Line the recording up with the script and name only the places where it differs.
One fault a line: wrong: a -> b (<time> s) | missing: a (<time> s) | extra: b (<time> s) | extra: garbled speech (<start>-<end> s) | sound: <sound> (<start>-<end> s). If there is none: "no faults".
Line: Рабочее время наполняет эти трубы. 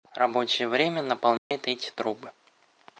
sound: dropout (1.4-1.5 s)